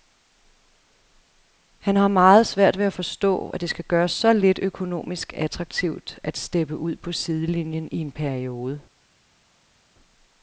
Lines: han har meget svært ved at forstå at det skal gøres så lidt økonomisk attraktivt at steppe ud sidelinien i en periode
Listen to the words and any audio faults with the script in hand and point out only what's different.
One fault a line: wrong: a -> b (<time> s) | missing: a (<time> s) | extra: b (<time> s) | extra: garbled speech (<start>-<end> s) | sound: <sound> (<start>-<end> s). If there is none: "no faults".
extra: på (7.0 s)